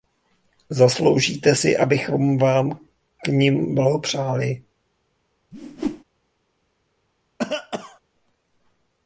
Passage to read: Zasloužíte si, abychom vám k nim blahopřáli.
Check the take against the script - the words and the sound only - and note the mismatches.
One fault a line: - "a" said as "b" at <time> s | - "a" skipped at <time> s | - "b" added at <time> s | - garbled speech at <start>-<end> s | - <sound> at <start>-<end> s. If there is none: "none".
- whoosh at 5.5-6.0 s
- cough at 7.4-8.0 s